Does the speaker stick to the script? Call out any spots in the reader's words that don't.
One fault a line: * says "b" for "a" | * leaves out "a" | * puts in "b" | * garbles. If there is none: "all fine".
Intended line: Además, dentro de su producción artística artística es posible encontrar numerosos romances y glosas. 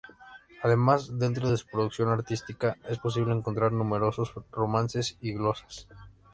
* leaves out "artística"